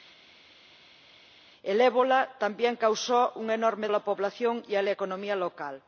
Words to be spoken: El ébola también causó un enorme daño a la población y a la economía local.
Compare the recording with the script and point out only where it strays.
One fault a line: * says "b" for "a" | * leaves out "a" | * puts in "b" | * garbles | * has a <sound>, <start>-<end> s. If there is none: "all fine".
* leaves out "daño"